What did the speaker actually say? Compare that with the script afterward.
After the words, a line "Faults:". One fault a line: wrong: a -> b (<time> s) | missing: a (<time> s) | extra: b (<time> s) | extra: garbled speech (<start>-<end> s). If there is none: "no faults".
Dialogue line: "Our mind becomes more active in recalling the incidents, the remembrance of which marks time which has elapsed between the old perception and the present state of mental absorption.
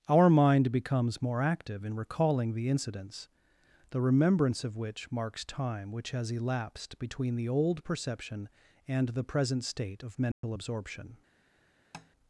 "Our mind becomes more active in recalling the incidents, the remembrance of which marks time which has elapsed between the old perception and the present state of mental absorption.
Faults:
no faults